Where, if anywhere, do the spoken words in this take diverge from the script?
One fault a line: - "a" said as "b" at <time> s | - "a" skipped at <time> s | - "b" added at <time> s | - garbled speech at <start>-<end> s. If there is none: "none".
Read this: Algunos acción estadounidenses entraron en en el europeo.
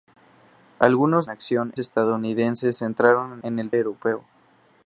none